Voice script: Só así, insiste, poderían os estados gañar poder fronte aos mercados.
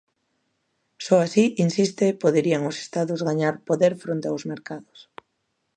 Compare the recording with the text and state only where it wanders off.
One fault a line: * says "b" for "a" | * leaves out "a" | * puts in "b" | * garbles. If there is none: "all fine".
all fine